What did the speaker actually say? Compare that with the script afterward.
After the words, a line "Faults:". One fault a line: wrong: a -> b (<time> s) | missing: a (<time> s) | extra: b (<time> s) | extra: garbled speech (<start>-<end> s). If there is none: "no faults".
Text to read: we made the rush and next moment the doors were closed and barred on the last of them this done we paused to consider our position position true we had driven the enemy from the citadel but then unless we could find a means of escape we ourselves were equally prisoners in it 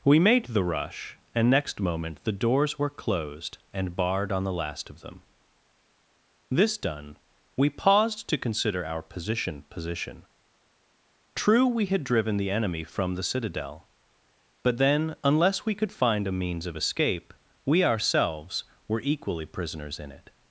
we made the rush and next moment the doors were closed and barred on the last of them this done we paused to consider our position position true we had driven the enemy from the citadel but then unless we could find a means of escape we ourselves were equally prisoners in it
Faults:
no faults